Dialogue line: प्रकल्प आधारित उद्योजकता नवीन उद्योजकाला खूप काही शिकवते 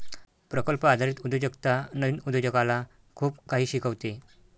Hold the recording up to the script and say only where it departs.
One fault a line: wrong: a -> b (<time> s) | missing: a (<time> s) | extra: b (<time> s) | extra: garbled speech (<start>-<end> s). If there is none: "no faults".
no faults